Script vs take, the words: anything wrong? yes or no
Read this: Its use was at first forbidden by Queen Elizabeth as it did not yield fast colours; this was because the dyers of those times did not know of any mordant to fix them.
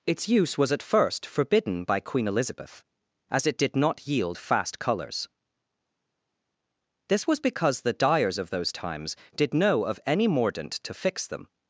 yes